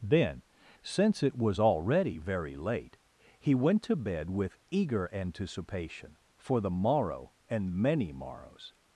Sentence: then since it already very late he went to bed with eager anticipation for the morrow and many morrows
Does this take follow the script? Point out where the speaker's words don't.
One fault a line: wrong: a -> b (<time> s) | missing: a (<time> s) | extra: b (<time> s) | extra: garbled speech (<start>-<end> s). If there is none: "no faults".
extra: was (1.4 s)